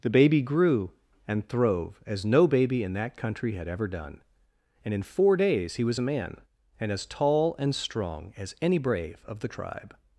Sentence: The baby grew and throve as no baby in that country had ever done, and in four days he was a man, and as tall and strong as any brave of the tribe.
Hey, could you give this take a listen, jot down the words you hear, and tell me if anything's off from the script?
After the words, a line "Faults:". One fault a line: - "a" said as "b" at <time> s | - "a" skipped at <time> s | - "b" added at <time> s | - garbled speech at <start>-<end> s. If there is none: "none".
The baby grew and throve as no baby in that country had ever done, and in four days he was a man, and as tall and strong as any brave of the tribe.
Faults:
none